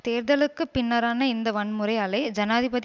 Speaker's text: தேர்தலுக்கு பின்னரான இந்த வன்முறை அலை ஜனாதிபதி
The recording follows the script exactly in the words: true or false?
true